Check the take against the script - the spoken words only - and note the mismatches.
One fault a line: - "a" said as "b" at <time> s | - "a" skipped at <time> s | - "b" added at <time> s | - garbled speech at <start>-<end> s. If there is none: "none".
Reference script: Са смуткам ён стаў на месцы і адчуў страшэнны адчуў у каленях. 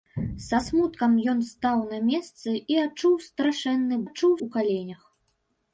none